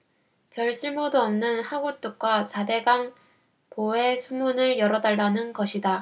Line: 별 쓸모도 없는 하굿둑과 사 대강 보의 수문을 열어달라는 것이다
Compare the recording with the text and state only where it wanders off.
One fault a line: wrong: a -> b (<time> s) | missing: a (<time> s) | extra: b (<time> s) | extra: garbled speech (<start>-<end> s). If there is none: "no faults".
no faults